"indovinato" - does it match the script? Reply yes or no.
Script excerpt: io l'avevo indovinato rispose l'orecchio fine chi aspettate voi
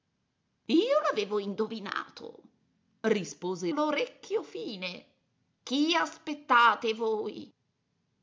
yes